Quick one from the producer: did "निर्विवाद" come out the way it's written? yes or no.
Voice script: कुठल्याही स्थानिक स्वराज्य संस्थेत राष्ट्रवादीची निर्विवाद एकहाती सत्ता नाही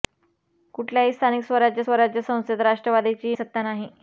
no